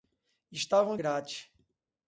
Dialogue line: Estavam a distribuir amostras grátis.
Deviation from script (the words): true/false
true